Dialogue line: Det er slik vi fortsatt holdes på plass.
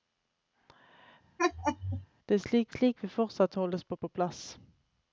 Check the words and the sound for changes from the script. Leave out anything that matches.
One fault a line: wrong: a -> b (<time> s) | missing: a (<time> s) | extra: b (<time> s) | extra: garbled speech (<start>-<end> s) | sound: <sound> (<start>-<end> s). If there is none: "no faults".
sound: laugh (1.4-2.1 s)
extra: slik (2.7 s)
extra: på (4.0 s)